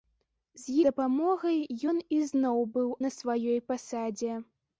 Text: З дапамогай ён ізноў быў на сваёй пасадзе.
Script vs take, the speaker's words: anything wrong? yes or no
no